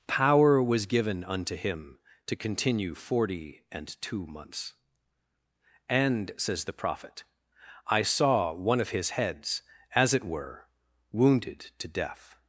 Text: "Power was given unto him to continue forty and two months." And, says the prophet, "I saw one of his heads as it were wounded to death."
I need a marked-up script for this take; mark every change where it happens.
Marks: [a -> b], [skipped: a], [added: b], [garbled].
"Power was given unto him to continue forty and two months." And, says the prophet, "I saw one of his heads as it were wounded to death."